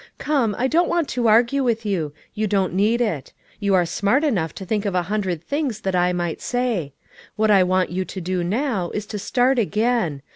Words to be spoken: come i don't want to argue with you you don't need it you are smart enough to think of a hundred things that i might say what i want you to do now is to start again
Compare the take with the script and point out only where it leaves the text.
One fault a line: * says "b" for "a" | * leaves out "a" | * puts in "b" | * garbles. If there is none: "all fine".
all fine